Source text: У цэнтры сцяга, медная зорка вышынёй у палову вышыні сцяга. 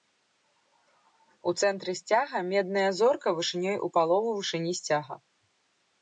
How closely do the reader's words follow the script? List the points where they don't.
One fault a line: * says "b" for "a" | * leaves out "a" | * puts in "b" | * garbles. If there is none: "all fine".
all fine